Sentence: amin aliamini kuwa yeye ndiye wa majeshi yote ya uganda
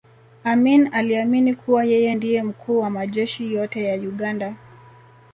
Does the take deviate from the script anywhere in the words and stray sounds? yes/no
yes